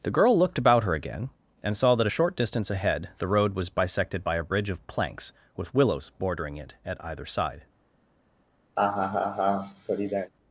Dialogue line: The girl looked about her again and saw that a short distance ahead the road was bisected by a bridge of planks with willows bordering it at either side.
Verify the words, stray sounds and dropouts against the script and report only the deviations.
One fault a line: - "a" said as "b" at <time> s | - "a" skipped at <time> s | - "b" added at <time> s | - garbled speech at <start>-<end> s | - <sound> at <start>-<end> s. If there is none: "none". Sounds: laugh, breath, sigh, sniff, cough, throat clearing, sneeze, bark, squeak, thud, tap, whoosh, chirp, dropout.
- laugh at 8.8-10.3 s